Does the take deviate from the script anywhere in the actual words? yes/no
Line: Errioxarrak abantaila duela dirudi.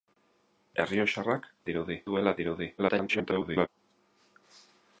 yes